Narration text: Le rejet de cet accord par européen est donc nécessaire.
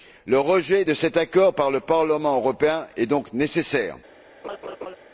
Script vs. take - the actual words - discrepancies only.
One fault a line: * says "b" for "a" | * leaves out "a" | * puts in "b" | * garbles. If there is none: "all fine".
* puts in "le Parlement"